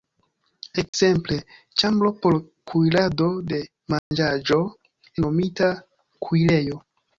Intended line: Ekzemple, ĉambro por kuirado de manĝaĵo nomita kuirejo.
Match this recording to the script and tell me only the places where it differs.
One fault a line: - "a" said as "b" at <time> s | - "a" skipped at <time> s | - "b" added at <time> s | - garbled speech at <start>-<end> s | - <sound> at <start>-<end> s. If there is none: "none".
- dropout at 0.9-0.9 s
- dropout at 4.0-4.1 s